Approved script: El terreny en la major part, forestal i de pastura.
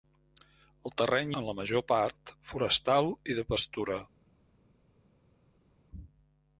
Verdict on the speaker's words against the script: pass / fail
pass